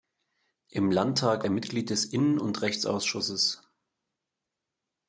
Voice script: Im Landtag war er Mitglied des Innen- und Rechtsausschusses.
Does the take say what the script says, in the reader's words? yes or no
no